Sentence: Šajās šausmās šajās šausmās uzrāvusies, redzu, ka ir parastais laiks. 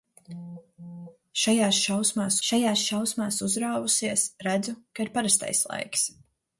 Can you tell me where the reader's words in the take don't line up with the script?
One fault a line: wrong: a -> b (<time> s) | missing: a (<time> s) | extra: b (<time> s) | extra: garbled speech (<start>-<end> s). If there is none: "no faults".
no faults